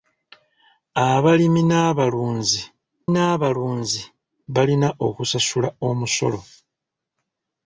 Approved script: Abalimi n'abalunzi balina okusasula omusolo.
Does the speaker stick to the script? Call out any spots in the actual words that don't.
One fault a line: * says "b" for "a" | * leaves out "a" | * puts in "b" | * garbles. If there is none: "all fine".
* puts in "n'abalunzi"